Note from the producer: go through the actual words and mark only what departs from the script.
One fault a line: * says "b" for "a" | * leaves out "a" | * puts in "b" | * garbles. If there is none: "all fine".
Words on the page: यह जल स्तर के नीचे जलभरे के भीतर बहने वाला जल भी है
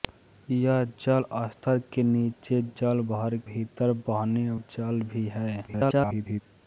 * leaves out "के"
* leaves out "वाला"
* garbles